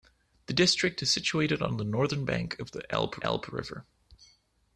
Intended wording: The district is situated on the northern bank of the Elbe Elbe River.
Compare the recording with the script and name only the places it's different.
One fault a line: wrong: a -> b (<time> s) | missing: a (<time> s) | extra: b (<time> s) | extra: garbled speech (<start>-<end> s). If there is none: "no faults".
no faults